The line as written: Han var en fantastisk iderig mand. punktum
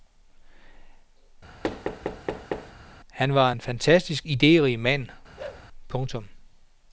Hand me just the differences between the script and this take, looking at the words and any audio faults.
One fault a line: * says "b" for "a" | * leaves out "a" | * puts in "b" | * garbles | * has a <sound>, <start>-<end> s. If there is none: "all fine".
* has a thud, 1.6-2.7 s
* has a bark, 5.4-5.7 s